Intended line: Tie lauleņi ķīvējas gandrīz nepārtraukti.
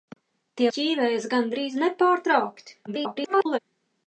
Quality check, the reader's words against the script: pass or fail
fail